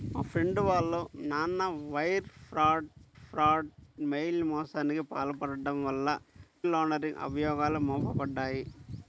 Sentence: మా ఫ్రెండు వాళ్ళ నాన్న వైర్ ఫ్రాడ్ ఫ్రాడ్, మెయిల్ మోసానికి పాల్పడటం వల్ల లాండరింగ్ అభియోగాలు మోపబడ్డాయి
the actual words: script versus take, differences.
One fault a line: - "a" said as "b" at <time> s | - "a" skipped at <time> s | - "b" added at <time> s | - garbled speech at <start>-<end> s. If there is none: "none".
none